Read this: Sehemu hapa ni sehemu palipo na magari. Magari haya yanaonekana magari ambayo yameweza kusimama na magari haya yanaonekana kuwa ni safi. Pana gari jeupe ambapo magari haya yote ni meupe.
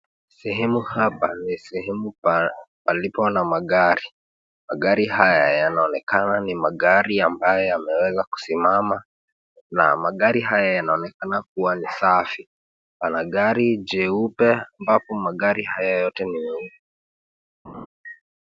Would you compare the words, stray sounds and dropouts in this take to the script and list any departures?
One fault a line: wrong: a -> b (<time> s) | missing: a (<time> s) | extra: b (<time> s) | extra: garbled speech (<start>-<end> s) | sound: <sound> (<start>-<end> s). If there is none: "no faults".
extra: ni (6.4 s)
sound: laugh (17.6-17.9 s)